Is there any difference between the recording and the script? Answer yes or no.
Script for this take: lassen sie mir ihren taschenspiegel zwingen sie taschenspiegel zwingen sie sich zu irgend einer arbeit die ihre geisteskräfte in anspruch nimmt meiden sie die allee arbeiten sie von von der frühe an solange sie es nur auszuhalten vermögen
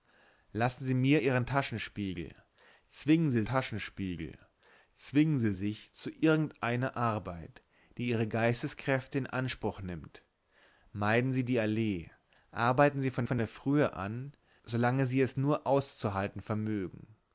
no